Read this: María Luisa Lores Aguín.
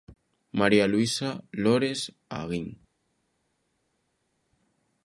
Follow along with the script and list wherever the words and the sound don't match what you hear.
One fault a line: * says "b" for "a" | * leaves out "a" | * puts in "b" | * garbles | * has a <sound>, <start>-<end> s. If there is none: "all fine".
all fine